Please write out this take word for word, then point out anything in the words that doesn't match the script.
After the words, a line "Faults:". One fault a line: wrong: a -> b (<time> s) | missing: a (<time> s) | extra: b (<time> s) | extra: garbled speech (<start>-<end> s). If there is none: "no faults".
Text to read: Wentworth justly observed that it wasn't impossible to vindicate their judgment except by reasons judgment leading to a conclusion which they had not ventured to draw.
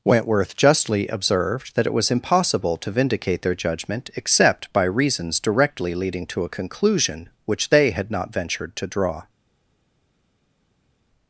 Wentworth justly observed that it was impossible to vindicate their judgment except by reasons directly leading to a conclusion which they had not ventured to draw.
Faults:
wrong: wasn't -> was (1.9 s)
wrong: judgment -> directly (5.4 s)